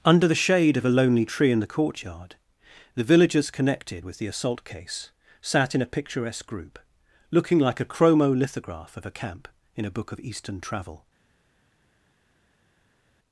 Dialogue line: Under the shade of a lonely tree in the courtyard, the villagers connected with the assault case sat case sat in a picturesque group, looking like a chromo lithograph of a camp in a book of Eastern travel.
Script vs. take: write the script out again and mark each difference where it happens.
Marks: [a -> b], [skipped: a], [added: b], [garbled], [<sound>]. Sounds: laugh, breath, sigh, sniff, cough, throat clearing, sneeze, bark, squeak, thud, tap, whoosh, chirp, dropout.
Under the shade of a lonely tree in the courtyard, the villagers connected with the assault case sat [skipped: case sat] in a picturesque group, looking like a chromo lithograph of a camp in a book of Eastern travel.